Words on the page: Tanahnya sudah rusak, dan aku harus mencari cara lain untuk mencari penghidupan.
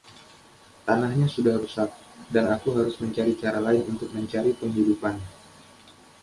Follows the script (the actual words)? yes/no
yes